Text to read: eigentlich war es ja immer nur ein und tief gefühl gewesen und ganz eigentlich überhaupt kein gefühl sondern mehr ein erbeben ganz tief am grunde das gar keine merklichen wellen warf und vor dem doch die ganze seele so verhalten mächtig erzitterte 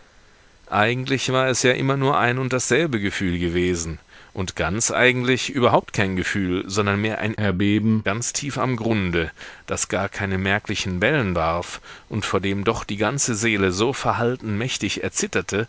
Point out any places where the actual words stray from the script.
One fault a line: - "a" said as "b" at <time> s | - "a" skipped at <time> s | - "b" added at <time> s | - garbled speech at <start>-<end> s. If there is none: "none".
- "tief" said as "dasselbe" at 2.5 s